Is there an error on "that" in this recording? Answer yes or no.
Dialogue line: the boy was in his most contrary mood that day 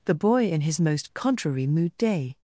yes